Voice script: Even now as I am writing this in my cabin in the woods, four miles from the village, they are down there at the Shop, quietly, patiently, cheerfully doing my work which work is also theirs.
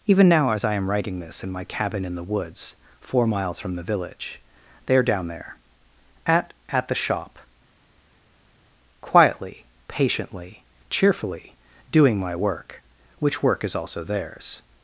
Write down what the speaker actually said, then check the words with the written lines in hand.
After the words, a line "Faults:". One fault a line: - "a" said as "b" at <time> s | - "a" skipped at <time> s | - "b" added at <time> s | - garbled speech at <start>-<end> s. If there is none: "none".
Even now as I am writing this in my cabin in the woods, four miles from the village, they are down there at at the Shop, quietly, patiently, cheerfully doing my work which work is also theirs.
Faults:
- "at" added at 6.7 s